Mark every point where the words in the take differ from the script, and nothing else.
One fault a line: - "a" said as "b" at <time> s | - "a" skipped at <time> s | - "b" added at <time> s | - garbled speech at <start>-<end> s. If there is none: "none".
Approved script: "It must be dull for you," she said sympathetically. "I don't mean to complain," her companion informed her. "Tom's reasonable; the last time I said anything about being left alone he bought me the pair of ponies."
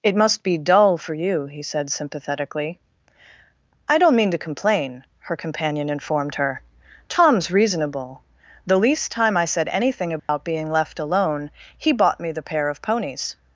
- "she" said as "he" at 1.4 s
- "last" said as "least" at 8.8 s